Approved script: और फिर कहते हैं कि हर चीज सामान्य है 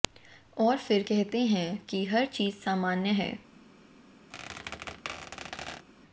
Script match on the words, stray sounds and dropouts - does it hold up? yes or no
no